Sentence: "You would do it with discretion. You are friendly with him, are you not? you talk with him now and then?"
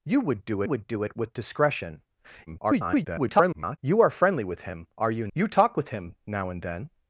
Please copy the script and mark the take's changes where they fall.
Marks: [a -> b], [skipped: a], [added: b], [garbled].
"You would do [added: would do] it with discretion. [garbled] You are friendly with him, are you [skipped: not?] you talk with him now and then?"